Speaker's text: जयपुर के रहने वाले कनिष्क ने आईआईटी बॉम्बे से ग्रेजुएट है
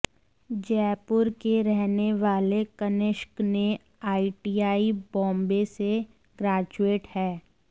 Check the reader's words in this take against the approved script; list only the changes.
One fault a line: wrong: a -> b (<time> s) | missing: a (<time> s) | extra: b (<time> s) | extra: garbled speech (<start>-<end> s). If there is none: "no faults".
no faults